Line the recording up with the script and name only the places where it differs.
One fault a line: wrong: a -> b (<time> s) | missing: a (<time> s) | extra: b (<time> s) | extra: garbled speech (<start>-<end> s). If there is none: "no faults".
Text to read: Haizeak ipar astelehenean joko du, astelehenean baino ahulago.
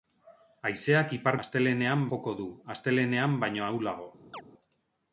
no faults